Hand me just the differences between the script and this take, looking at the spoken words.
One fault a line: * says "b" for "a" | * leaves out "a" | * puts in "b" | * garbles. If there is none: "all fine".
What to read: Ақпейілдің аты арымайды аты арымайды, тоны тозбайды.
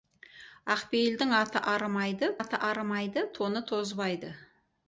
all fine